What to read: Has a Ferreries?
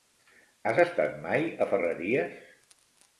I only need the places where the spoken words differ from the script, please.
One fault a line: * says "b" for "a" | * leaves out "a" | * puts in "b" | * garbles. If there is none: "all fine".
* puts in "estat mai"